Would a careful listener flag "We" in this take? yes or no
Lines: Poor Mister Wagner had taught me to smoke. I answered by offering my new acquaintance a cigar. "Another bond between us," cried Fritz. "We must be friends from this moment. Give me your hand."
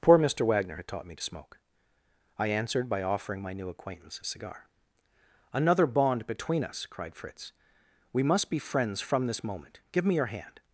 no